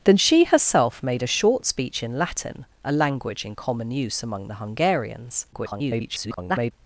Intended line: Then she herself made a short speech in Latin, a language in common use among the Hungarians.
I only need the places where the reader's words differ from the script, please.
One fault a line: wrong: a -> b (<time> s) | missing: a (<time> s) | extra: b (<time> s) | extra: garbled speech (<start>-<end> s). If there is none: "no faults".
extra: garbled speech (5.5-6.7 s)